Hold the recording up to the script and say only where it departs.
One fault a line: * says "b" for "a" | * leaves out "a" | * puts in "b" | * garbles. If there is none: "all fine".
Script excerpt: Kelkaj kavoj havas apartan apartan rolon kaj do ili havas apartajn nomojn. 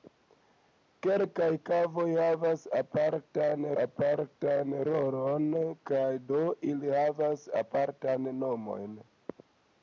all fine